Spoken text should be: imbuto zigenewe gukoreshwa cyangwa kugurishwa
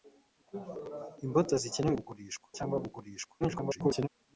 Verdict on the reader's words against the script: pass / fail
fail